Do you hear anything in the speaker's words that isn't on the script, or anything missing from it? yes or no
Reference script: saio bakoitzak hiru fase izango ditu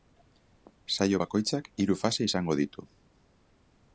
no